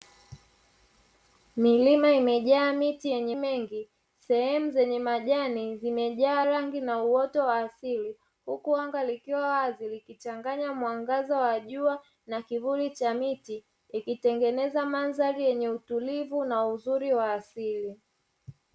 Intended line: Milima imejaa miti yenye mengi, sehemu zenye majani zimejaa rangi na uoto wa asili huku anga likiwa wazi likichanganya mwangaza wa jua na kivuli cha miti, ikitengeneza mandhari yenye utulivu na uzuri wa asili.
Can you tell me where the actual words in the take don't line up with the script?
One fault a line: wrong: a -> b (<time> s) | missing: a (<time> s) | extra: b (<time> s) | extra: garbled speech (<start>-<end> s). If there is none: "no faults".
no faults